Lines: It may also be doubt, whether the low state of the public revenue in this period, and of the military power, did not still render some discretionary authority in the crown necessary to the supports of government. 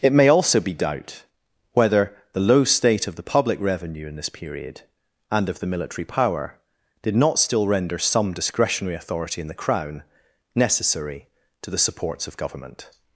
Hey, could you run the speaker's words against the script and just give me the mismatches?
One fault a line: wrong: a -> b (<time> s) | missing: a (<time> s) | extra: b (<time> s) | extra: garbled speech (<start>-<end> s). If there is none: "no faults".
no faults